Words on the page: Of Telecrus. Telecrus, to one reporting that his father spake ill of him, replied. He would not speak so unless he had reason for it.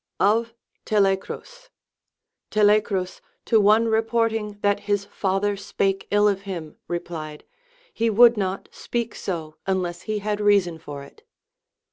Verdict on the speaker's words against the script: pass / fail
pass